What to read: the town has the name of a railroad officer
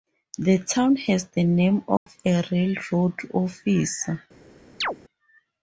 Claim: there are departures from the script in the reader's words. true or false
false